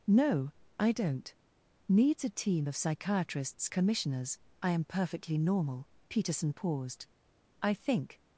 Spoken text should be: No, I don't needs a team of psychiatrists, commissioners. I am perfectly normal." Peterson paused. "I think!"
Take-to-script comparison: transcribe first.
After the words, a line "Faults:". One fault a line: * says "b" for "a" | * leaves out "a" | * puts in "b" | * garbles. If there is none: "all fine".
No, I don't needs a team of psychiatrists, commissioners. I am perfectly normal." Peterson paused. "I think!"
Faults:
all fine